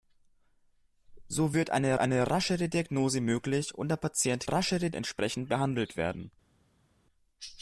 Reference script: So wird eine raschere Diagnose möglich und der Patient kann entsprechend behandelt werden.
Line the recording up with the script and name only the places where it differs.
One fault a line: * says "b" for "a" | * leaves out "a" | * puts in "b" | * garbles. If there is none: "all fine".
* puts in "eine"
* says "raschere" for "kann"